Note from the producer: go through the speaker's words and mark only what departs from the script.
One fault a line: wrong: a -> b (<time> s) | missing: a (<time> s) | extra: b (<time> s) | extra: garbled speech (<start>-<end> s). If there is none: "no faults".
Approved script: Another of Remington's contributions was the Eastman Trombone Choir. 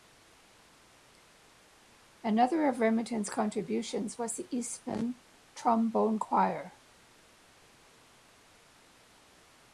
no faults